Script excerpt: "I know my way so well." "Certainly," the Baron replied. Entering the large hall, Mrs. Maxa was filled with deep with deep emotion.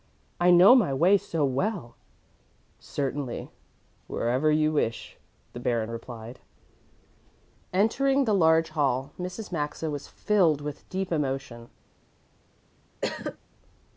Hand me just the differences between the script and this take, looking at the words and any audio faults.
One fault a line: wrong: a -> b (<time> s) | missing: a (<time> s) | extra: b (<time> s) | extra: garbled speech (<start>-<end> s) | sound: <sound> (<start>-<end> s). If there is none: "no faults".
extra: wherever you wish (4.1 s)
missing: with deep (11.1 s)
sound: cough (13.0-13.4 s)